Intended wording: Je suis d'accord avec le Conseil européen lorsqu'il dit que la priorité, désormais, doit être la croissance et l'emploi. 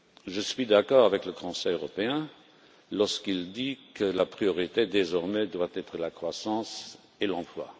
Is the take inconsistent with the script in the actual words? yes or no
no